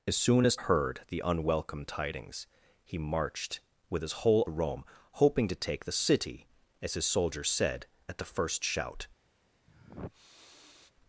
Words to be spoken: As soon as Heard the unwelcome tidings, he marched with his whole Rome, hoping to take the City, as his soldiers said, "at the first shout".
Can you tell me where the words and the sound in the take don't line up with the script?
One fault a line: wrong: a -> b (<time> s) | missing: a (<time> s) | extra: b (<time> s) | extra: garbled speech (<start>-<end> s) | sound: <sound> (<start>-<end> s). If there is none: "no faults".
sound: sniff (9.7-10.9 s)